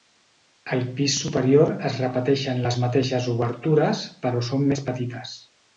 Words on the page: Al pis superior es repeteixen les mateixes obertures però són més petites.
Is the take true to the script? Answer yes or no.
yes